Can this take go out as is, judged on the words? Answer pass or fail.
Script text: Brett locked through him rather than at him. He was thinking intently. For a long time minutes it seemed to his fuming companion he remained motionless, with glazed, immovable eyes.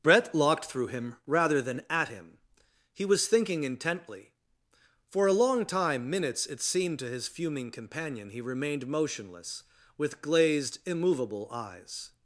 pass